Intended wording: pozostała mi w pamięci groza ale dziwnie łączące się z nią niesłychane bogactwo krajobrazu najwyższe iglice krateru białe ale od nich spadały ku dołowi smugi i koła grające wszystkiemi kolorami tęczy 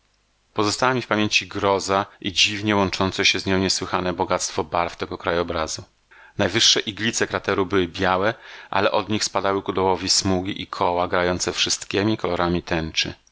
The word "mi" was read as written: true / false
true